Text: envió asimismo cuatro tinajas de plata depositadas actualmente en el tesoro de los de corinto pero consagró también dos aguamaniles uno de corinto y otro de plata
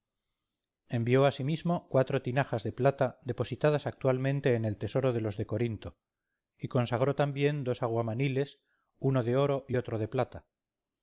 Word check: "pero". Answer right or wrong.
wrong